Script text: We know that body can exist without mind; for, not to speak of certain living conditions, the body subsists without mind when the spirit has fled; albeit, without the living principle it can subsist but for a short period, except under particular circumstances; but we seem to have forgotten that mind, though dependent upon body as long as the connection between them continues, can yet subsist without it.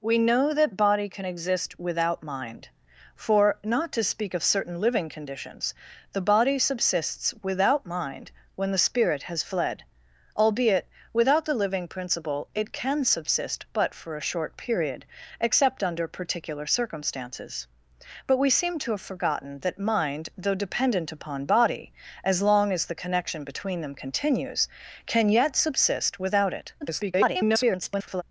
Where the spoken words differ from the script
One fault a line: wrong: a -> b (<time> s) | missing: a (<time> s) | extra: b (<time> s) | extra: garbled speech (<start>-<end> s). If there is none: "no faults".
extra: garbled speech (26.8-28.2 s)